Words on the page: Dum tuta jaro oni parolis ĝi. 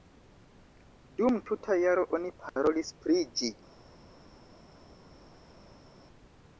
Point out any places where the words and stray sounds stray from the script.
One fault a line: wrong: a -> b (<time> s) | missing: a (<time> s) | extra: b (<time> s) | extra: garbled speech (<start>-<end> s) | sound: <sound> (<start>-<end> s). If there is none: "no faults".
extra: pri (3.0 s)